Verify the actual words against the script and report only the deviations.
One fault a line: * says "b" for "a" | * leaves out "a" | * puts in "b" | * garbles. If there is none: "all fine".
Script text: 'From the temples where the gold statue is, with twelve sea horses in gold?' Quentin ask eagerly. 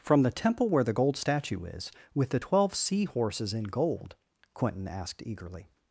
* says "temple" for "temples"
* puts in "the"
* says "asked" for "ask"